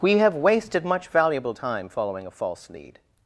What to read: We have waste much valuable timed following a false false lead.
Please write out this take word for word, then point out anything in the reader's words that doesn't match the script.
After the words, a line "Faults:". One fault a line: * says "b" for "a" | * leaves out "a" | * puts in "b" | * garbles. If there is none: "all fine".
We have wasted much valuable time following a false lead.
Faults:
* says "wasted" for "waste"
* says "time" for "timed"
* leaves out "false"